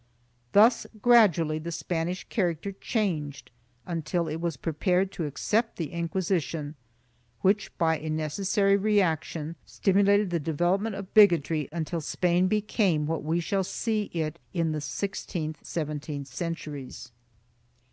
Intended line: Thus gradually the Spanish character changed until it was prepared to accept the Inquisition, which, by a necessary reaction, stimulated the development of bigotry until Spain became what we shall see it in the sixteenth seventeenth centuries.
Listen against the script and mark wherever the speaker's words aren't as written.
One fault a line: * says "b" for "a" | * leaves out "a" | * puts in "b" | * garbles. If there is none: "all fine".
all fine